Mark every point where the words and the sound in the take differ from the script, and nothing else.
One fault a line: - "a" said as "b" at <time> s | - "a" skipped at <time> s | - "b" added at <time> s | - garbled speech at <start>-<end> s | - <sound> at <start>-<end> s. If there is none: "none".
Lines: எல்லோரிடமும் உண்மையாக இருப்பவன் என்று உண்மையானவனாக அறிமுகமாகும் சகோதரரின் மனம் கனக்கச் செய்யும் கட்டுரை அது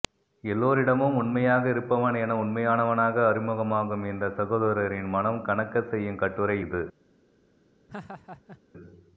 - "என்று" said as "என" at 2.2 s
- "இந்த" added at 4.1 s
- "அது" said as "இது" at 6.6 s
- laugh at 7.9-8.6 s